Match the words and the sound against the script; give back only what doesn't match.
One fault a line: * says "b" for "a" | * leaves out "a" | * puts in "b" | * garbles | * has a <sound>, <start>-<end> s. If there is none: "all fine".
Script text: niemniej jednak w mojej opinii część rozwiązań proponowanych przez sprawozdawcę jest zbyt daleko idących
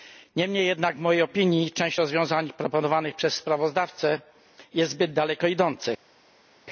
all fine